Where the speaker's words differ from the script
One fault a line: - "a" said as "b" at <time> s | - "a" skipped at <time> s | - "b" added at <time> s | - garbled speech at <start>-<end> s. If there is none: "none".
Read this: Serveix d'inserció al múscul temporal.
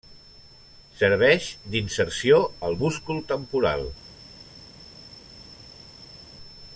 none